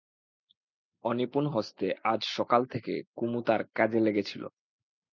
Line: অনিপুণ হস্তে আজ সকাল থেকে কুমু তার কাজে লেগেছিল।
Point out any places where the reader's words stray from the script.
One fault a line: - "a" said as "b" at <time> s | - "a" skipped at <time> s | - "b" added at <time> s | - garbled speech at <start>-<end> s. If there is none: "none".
none